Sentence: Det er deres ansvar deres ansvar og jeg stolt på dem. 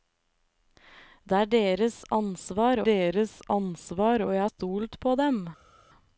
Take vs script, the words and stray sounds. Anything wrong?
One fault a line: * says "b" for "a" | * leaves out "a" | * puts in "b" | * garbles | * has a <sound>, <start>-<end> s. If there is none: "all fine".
all fine